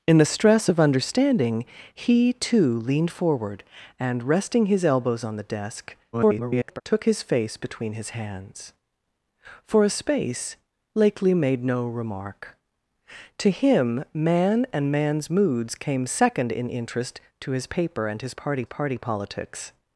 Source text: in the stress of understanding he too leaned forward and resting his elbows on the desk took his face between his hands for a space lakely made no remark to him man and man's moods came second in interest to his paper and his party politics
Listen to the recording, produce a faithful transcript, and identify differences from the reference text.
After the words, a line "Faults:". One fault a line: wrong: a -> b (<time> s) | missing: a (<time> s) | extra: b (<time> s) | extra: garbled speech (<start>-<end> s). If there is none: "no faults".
in the stress of understanding he too leaned forward and resting his elbows on the desk [garbled] took his face between his hands for a space lakely made no remark to him man and man's moods came second in interest to his paper and his party party politics
Faults:
extra: garbled speech (6.1-6.8 s)
extra: party (18.6 s)